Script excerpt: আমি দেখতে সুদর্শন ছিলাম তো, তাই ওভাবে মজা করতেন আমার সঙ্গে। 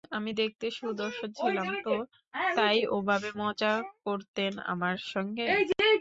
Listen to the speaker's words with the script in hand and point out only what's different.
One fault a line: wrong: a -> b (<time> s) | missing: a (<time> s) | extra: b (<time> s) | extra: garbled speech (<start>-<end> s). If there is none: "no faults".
no faults